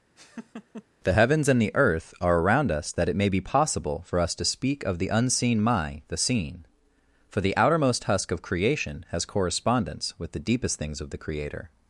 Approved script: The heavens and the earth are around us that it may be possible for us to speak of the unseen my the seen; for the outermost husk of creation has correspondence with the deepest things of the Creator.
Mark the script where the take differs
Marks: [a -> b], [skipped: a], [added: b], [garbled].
The heavens and the earth are around us that it may be possible for us to speak of the unseen my the seen; for the outermost husk of creation has correspondence with the deepest things of the Creator.